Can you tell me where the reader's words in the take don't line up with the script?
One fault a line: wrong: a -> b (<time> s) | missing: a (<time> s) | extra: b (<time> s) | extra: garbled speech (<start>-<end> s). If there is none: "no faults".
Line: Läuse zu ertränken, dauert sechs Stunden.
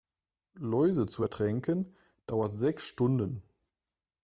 no faults